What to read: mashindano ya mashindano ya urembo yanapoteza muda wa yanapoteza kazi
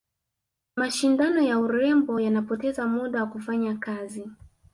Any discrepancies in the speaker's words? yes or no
yes